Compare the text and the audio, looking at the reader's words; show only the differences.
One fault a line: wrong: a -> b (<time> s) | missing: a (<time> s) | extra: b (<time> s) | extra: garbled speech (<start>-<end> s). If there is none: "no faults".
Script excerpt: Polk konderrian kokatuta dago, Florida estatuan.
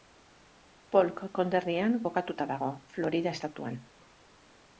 no faults